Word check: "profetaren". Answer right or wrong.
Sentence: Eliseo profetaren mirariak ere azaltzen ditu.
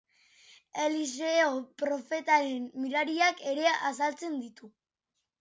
right